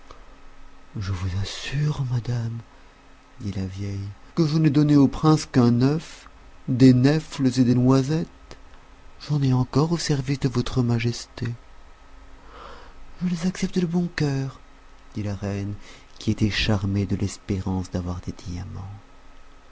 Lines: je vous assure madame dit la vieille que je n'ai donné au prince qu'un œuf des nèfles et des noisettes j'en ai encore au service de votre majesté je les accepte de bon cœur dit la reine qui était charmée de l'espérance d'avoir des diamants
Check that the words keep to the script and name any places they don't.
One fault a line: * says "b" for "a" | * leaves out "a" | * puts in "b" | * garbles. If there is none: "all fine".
all fine